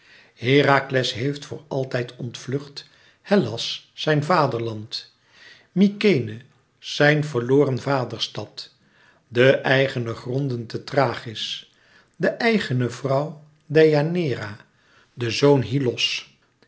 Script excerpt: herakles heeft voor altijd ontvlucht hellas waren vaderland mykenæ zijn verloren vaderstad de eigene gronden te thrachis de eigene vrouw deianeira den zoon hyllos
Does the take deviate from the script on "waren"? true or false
true